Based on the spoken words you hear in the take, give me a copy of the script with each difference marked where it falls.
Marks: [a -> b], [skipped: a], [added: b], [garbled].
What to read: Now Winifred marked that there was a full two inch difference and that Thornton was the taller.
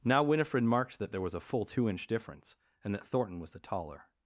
Now Winifred marked that there was a full two inch difference and that Thornton was the taller.